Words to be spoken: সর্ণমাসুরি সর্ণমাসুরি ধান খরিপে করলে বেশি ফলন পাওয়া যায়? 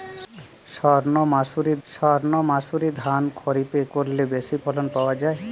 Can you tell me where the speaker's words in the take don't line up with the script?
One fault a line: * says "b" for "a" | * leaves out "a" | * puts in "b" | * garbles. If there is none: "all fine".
all fine